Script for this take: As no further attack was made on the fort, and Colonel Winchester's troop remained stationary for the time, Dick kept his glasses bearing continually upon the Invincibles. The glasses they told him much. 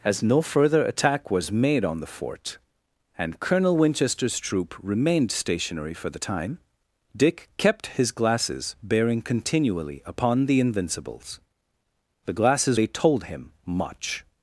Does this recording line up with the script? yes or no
yes